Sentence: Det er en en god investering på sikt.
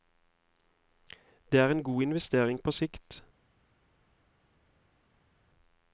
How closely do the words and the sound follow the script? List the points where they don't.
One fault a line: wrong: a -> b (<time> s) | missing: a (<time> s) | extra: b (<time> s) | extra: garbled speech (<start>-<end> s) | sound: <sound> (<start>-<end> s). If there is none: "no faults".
missing: en (1.8 s)